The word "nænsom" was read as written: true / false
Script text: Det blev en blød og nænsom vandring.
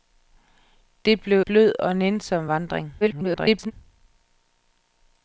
true